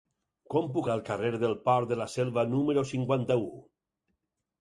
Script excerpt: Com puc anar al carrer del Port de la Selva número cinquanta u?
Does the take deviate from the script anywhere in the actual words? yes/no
yes